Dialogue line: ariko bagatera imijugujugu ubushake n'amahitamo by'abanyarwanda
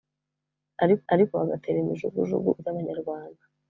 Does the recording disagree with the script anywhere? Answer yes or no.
yes